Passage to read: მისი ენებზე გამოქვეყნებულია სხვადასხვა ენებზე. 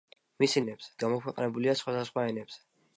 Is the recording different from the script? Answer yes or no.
no